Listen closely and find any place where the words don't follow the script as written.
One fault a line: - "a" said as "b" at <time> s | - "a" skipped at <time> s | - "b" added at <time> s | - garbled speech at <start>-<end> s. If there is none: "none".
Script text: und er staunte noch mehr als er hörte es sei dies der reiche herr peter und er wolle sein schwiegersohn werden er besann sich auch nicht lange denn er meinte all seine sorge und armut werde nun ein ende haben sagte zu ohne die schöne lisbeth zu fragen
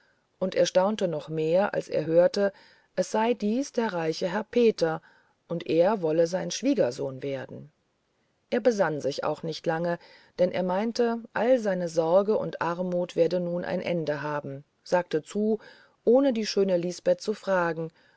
none